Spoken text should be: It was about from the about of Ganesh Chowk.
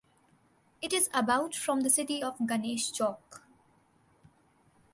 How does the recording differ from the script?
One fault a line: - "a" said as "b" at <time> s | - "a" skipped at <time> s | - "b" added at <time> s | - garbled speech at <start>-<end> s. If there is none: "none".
- "was" said as "is" at 0.9 s
- "about" said as "city" at 1.9 s